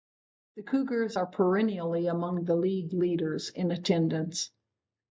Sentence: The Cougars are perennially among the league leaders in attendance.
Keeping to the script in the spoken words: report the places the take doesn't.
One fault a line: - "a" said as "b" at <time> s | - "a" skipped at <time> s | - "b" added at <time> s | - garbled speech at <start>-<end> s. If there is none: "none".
none